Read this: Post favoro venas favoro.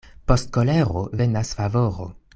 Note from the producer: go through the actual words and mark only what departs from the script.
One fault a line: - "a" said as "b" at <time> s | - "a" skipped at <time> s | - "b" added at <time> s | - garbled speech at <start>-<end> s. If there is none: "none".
- "favoro" said as "kolero" at 0.6 s